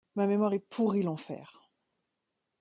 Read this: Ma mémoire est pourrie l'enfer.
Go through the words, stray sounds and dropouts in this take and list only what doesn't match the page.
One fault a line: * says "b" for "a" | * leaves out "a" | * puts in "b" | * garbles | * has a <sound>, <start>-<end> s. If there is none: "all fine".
all fine